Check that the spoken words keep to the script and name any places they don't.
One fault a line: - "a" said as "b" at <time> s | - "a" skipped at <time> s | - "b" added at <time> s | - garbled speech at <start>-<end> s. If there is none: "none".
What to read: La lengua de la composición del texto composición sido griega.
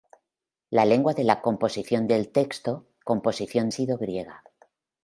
none